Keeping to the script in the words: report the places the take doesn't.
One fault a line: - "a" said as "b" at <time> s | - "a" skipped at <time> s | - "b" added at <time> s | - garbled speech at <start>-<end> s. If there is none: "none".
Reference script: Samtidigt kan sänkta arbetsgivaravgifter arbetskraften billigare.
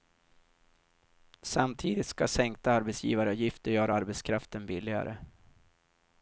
- "kan" said as "ska" at 2.1 s
- "göra" added at 3.7 s